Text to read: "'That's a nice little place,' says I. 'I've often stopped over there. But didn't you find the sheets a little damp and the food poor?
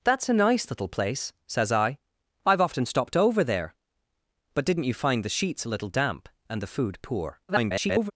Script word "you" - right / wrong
right